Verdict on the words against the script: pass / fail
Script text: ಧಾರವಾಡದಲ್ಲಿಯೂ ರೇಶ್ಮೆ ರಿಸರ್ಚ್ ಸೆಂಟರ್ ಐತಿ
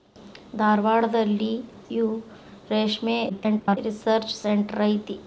fail